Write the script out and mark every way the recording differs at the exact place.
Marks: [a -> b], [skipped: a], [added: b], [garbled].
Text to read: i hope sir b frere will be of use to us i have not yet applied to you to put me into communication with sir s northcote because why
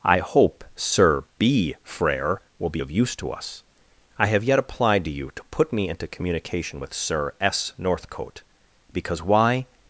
i hope sir b frere will be of use to us i have [skipped: not] yet applied to you to put me into communication with sir s northcote because why